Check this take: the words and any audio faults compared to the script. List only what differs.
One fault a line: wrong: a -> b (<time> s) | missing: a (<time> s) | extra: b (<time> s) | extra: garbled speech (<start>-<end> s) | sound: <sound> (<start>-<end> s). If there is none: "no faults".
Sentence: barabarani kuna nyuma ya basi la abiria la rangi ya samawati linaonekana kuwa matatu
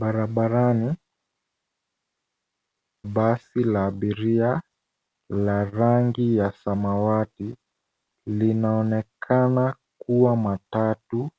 missing: kuna nyuma ya (0.9 s)